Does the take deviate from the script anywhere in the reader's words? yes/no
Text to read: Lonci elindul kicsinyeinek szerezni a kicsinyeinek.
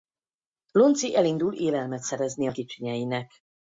yes